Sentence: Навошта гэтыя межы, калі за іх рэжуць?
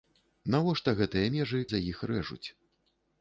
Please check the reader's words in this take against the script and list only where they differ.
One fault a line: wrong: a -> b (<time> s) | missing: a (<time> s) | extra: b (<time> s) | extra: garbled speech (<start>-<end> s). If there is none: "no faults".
missing: калі (1.6 s)